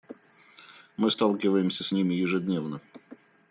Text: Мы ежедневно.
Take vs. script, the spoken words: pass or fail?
fail